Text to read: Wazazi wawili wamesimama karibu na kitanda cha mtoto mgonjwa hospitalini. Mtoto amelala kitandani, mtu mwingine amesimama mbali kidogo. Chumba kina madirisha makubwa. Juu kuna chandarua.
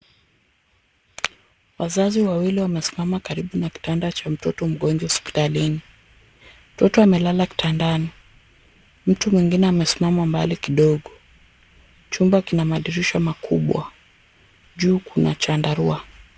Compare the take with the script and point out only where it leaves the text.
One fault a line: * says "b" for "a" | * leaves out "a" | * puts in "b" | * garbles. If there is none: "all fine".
all fine